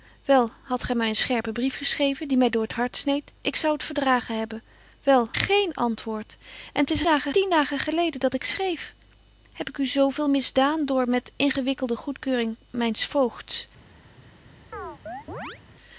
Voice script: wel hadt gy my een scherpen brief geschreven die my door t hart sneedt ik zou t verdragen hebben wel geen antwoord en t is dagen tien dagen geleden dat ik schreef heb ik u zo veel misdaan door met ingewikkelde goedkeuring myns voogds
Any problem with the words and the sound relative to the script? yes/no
yes